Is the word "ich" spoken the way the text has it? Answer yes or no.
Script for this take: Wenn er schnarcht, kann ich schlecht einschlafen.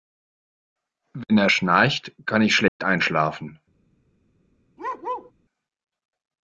yes